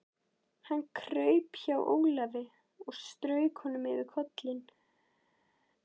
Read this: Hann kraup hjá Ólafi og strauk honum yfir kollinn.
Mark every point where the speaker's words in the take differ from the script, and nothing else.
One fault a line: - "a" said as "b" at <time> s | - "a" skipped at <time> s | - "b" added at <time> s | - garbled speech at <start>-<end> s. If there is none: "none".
none